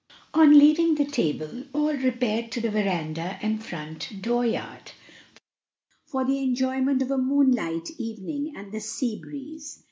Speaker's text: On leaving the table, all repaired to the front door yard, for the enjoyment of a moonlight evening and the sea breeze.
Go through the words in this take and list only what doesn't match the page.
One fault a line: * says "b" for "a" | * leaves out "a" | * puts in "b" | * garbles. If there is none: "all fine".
* puts in "veranda and"